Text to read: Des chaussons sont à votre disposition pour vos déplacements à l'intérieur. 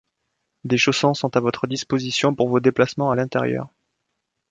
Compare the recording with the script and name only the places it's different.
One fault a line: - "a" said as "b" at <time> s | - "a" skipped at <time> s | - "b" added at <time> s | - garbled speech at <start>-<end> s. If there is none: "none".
none